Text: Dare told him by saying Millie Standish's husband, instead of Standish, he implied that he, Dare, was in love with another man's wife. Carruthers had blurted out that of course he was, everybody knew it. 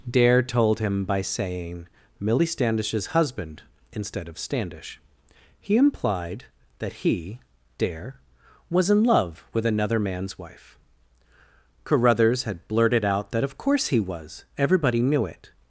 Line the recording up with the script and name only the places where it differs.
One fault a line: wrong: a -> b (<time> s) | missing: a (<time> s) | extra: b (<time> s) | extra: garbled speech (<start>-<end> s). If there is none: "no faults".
no faults